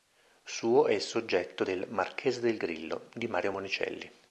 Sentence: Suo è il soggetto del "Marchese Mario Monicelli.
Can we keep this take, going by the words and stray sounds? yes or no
no